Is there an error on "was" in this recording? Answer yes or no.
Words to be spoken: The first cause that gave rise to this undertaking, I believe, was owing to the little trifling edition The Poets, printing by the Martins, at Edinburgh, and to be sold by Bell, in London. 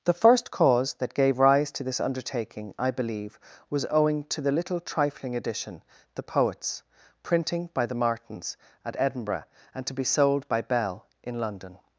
no